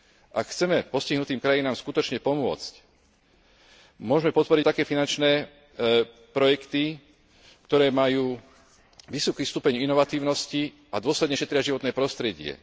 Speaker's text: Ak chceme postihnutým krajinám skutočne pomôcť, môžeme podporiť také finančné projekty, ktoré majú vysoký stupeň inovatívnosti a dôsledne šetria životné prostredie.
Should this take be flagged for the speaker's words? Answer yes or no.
no